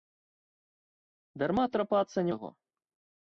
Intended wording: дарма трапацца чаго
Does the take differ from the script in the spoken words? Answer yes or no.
no